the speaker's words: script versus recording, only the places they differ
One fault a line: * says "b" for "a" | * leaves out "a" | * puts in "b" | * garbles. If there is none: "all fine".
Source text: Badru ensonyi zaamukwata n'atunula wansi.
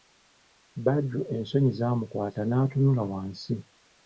all fine